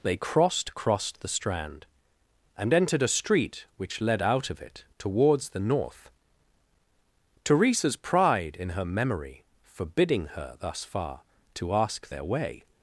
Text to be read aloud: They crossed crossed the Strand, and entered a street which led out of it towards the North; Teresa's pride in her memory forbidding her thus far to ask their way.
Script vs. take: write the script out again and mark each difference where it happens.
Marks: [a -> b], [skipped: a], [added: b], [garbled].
They crossed crossed the Strand, and entered a street which led out of it towards the North; Teresa's pride in her memory forbidding her thus far to ask their way.